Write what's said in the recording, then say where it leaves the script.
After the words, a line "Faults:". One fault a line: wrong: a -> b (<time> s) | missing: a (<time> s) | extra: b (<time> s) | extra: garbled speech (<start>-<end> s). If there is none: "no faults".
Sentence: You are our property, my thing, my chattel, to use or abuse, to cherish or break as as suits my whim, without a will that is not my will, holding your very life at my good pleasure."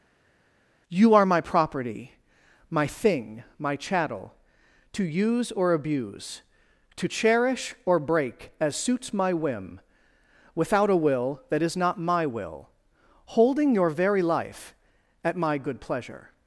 You are my property, my thing, my chattel, to use or abuse, to cherish or break as suits my whim, without a will that is not my will, holding your very life at my good pleasure."
Faults:
wrong: our -> my (1.2 s)
missing: as (8.7 s)